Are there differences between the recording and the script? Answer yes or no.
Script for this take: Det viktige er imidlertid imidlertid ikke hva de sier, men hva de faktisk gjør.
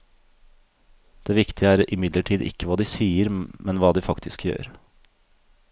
yes